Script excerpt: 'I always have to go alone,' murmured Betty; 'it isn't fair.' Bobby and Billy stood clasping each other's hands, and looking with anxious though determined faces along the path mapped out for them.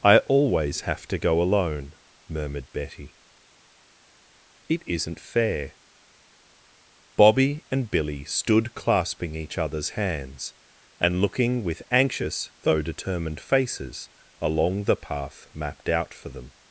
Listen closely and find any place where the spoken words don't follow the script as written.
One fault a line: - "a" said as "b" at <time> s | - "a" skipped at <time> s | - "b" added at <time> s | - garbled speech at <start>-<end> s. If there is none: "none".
none